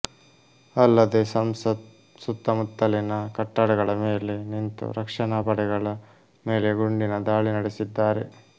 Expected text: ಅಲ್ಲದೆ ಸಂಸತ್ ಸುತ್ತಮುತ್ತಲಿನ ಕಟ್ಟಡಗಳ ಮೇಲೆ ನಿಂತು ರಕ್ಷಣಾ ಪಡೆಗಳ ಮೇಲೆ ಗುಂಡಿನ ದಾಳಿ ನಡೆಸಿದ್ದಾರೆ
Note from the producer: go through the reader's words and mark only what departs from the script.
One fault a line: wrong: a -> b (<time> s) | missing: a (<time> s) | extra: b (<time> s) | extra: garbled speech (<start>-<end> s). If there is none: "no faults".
no faults